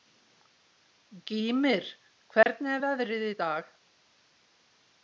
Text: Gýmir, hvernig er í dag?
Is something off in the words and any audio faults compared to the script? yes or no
yes